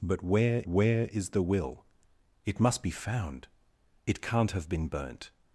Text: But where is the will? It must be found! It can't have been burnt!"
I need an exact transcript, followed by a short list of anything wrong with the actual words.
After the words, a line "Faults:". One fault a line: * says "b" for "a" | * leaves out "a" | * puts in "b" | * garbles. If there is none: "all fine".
But where where is the will? It must be found! It can't have been burnt!"
Faults:
* puts in "where"